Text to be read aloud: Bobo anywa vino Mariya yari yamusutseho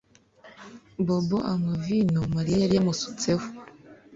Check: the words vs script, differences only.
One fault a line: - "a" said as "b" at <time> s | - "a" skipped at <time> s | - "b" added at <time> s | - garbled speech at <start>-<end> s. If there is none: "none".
none